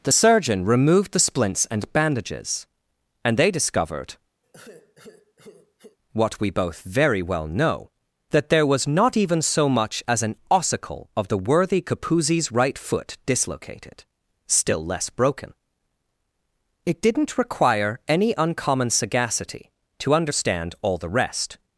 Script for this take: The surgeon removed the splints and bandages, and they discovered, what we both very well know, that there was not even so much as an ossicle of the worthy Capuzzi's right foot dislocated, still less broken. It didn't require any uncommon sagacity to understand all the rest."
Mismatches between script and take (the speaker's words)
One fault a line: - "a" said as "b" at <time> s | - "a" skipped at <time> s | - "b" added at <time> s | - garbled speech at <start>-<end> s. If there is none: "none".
none